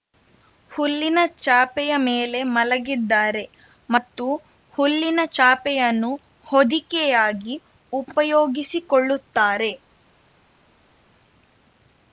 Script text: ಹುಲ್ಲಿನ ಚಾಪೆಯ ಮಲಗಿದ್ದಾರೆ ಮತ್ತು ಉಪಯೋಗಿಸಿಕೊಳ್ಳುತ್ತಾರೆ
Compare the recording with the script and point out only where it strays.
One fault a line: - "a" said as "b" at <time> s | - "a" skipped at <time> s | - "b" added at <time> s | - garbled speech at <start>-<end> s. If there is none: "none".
- "ಮೇಲೆ" added at 2.0 s
- "ಹುಲ್ಲಿನ ಚಾಪೆಯನ್ನು ಹೊದಿಕೆಯಾಗಿ" added at 4.8 s